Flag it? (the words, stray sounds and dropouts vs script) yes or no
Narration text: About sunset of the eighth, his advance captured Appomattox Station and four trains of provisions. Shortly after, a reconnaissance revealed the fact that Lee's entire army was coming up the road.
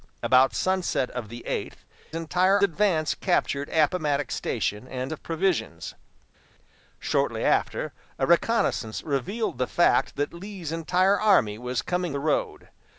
yes